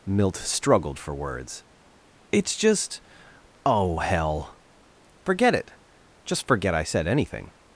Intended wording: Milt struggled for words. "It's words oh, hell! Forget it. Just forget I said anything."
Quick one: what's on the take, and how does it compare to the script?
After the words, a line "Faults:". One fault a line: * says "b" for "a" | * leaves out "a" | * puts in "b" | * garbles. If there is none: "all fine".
Milt struggled for words. "It's just oh, hell! Forget it. Just forget I said anything."
Faults:
* says "just" for "words"